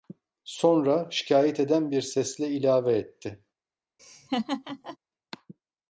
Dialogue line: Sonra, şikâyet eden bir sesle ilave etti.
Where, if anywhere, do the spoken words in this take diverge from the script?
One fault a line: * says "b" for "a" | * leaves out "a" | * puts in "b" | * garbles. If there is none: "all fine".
all fine